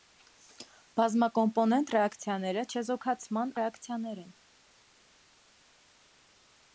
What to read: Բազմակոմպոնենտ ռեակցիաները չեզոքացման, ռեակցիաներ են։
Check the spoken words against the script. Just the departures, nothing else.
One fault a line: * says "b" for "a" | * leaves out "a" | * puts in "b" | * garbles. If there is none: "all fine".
all fine